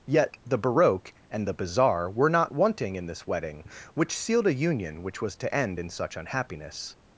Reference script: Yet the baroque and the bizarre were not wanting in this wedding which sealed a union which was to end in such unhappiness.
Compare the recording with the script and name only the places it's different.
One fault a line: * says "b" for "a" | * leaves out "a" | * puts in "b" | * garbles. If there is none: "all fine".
all fine